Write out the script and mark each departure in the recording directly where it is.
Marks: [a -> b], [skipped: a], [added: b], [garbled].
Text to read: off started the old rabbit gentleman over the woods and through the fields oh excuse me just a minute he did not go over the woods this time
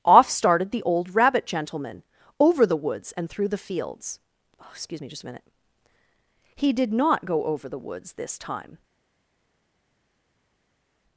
off started the old rabbit gentleman over the woods and through the fields oh excuse me just a minute he did not go over the woods this time